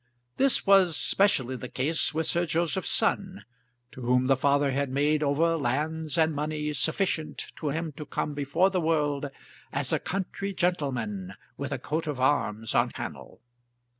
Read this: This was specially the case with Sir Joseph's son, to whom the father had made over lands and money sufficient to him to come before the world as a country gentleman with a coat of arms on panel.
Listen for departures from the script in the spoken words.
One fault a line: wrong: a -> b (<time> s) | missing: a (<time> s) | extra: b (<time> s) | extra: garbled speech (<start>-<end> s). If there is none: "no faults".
no faults